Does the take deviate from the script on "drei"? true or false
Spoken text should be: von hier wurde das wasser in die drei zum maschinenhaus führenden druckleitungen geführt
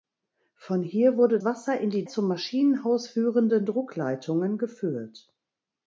true